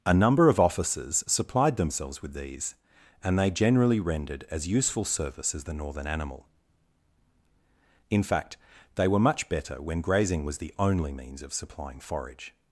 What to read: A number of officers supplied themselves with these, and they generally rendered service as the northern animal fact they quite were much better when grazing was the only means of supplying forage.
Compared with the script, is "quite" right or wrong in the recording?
wrong